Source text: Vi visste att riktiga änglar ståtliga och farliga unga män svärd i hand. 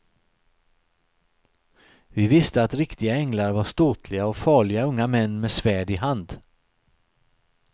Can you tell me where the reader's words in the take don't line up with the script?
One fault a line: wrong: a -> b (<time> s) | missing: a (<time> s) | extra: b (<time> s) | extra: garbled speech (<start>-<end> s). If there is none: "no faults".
extra: var (3.5 s)
extra: med (5.4 s)